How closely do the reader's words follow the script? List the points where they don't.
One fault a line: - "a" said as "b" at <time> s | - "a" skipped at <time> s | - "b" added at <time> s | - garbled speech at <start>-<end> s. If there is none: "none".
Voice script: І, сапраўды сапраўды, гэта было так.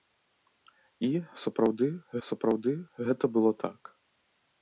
none